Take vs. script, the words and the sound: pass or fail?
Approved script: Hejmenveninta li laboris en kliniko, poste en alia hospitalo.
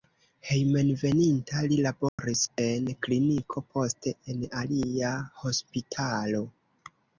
fail